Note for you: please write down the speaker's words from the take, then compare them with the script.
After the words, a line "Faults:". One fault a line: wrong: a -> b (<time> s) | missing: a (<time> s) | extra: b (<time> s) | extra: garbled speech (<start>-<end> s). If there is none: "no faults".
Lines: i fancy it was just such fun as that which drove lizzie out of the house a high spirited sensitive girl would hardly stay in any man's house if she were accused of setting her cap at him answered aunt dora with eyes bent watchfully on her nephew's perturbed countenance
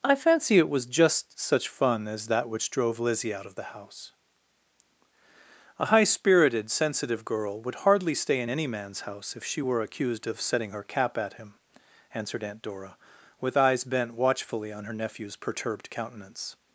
i fancy it was just such fun as that which drove lizzie out of the house a high spirited sensitive girl would hardly stay in any man's house if she were accused of setting her cap at him answered aunt dora with eyes bent watchfully on her nephew's perturbed countenance
Faults:
no faults